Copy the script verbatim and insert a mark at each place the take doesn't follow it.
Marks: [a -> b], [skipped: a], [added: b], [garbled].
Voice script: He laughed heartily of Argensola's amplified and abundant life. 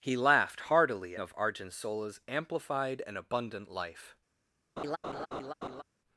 He laughed heartily of Argensola's amplified and abundant life.